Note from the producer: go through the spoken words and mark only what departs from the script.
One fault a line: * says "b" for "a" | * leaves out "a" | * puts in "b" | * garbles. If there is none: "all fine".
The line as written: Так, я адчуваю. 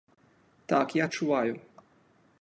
all fine